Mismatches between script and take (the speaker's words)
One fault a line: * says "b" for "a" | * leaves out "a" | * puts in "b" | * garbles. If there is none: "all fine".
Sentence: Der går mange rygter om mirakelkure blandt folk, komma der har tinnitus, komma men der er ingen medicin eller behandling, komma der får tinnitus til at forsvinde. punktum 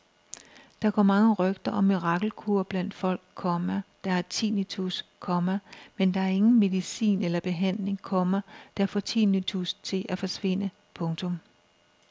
all fine